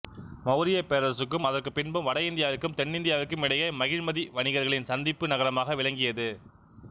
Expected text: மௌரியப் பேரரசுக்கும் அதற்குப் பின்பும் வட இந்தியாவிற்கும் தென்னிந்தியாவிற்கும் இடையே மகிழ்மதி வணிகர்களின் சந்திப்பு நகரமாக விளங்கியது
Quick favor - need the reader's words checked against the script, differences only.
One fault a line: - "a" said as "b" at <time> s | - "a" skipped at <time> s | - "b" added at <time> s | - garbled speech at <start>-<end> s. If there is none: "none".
none